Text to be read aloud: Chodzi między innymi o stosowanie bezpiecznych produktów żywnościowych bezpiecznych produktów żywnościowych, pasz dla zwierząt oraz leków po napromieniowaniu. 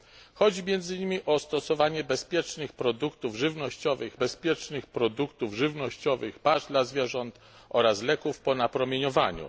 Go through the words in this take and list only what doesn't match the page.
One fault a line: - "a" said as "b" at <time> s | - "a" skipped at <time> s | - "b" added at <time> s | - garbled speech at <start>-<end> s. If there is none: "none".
none